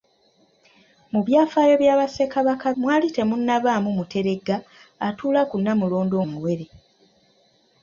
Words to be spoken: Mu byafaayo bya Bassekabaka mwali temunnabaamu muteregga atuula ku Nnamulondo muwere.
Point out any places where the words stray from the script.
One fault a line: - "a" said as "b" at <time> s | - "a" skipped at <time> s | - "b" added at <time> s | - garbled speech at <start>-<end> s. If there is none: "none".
none